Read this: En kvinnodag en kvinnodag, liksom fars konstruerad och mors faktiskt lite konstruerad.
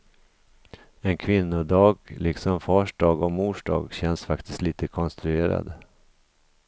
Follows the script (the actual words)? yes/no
no